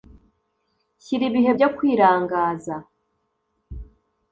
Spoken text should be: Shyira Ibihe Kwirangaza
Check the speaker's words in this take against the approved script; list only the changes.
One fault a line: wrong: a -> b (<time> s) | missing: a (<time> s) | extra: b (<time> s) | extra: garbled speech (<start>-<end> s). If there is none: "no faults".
extra: byo (1.6 s)